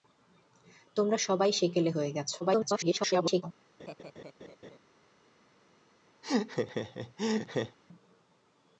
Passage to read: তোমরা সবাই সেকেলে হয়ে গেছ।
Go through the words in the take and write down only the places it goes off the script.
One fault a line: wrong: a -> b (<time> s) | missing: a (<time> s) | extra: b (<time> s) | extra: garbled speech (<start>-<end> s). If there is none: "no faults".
extra: garbled speech (2.4-3.4 s)